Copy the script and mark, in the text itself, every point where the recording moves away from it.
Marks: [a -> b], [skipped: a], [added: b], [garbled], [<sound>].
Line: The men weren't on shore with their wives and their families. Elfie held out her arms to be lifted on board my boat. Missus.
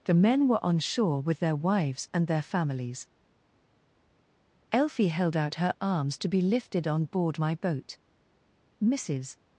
The men [weren't -> were] on shore with their wives and their families. Elfie held out her arms to be lifted on board my boat. Missus.